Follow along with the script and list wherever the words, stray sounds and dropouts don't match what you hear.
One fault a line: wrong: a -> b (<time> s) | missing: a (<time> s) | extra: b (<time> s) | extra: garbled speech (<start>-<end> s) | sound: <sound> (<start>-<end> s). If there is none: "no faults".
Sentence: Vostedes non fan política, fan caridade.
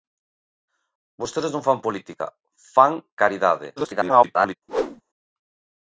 extra: garbled speech (3.8-4.6 s)
sound: whoosh (4.7-5.0 s)